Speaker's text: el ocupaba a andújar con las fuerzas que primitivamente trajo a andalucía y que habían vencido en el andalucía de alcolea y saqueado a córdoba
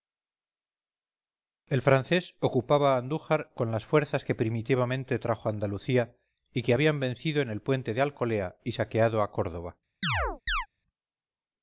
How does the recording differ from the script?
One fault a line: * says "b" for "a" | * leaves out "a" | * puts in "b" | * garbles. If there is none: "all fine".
* puts in "francés"
* says "puente" for "andalucía"